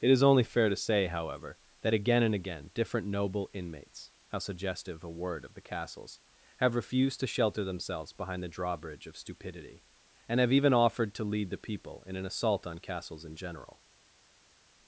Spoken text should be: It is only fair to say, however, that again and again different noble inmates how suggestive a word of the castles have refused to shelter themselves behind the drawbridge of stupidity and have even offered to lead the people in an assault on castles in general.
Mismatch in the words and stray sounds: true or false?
false